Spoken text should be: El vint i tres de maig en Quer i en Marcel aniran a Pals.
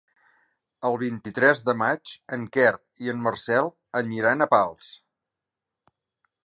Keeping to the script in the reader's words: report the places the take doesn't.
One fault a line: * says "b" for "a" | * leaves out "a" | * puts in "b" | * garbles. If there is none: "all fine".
all fine